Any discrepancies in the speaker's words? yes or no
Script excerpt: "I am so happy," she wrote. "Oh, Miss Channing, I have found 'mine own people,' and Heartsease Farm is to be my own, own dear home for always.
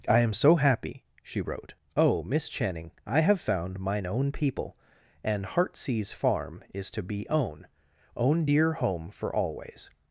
yes